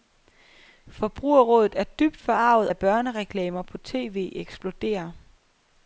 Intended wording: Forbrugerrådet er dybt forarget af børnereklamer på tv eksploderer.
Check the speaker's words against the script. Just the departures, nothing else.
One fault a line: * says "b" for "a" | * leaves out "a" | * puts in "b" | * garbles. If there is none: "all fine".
all fine